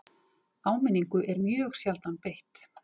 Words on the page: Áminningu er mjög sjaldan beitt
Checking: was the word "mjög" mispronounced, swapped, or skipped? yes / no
no